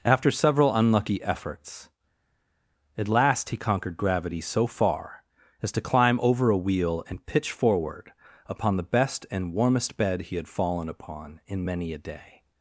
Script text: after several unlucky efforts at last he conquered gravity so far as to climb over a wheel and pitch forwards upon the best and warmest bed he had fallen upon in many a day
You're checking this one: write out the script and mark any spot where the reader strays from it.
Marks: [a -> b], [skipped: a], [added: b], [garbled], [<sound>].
after several unlucky efforts at last he conquered gravity so far as to climb over a wheel and pitch [forwards -> forward] upon the best and warmest bed he had fallen upon in many a day